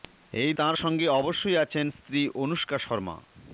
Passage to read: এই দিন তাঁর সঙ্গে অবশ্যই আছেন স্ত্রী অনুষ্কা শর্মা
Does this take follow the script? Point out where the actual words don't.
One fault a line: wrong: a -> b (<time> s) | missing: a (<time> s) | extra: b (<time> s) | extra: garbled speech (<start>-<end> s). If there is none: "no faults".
missing: দিন (0.5 s)